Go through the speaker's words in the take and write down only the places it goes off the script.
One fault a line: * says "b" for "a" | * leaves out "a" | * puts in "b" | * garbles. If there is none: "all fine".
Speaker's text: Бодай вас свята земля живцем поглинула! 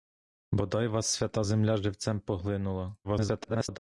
* garbles